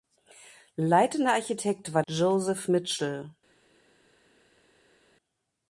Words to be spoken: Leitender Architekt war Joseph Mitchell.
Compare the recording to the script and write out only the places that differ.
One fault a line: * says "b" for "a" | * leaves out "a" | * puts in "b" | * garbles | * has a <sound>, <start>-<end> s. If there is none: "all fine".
all fine